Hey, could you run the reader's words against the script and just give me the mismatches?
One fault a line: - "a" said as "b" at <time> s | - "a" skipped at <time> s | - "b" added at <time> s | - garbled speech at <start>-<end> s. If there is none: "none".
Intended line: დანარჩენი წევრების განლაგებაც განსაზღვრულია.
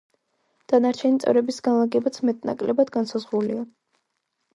- "მეტ ნაკლებად" added at 2.3 s